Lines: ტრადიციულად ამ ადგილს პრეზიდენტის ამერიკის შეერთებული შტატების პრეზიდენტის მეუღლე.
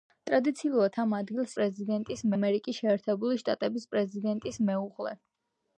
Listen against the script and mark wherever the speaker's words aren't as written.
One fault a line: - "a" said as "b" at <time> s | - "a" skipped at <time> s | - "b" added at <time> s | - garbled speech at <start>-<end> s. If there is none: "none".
none